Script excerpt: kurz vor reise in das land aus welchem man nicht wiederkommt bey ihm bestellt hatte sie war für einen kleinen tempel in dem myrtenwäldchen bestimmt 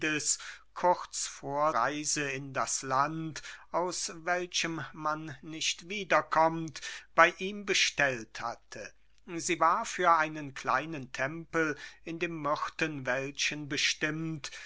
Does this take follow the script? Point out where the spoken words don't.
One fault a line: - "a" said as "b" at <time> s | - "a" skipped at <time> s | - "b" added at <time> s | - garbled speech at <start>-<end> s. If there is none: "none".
none